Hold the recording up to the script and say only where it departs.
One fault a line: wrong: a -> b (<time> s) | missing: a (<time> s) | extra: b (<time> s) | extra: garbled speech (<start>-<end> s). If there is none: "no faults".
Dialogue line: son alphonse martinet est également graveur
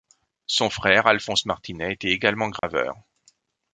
extra: frère (0.7 s)
wrong: est -> était (1.9 s)